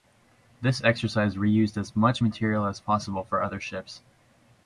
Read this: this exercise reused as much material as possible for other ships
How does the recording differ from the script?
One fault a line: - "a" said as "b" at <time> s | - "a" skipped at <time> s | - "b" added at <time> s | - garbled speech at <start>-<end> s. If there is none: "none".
none